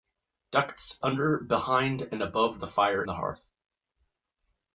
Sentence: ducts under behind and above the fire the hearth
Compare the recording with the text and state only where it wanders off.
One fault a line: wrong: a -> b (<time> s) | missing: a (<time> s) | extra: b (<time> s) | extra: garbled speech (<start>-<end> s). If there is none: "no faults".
no faults